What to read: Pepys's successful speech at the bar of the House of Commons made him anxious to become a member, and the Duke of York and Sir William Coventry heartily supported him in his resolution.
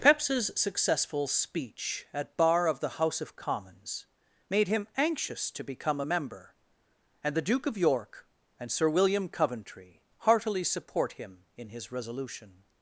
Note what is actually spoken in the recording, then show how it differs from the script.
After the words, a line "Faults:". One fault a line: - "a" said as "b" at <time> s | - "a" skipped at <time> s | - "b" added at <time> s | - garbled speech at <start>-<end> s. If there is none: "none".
Pepys's successful speech at bar of the House of Commons made him anxious to become a member, and the Duke of York and Sir William Coventry heartily support him in his resolution.
Faults:
- "the" skipped at 2.4 s
- "supported" said as "support" at 10.6 s